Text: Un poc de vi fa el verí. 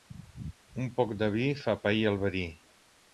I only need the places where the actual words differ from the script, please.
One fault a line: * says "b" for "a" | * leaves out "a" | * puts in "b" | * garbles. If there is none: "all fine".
* puts in "pair"